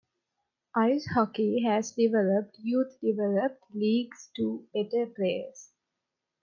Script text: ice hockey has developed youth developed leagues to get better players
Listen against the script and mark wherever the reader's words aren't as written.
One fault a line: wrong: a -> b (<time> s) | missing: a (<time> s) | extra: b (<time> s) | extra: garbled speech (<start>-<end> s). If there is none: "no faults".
missing: get (4.7 s)